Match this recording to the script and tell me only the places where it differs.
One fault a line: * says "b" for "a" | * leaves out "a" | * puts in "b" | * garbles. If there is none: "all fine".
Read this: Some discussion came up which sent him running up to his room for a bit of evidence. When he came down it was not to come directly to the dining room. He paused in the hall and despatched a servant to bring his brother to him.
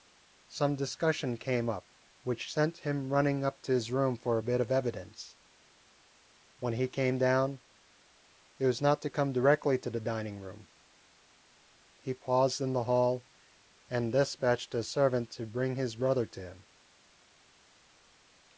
all fine